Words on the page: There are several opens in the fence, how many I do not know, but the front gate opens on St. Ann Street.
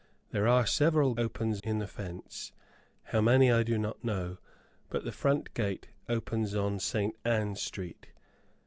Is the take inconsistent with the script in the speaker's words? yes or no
no